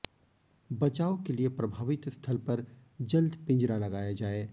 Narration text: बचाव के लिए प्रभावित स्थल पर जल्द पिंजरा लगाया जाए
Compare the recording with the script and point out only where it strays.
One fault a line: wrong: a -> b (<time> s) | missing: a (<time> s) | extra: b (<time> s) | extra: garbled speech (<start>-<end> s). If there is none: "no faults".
no faults